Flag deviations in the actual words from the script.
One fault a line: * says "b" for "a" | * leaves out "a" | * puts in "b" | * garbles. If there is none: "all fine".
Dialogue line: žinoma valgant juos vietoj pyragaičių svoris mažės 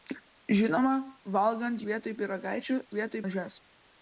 * leaves out "juos"
* says "vietoj" for "svoris"